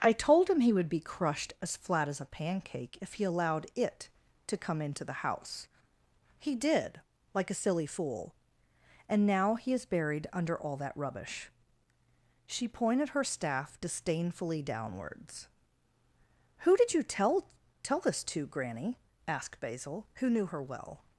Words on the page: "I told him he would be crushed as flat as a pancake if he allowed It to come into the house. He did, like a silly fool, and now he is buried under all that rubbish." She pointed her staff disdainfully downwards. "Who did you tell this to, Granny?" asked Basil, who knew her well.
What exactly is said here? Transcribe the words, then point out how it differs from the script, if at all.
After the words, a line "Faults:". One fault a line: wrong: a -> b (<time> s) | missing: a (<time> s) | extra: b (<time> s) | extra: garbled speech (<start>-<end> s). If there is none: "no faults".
"I told him he would be crushed as flat as a pancake if he allowed It to come into the house. He did, like a silly fool, and now he is buried under all that rubbish." She pointed her staff disdainfully downwards. "Who did you tell tell this to, Granny?" asked Basil, who knew her well.
Faults:
extra: tell (17.8 s)